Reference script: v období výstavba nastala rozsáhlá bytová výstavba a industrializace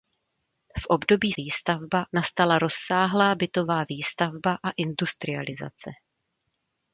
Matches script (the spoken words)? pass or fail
pass